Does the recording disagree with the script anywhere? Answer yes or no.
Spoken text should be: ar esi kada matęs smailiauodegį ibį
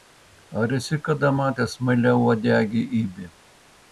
no